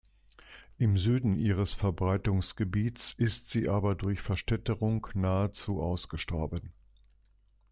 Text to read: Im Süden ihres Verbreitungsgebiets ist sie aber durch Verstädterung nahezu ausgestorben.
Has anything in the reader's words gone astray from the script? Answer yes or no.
no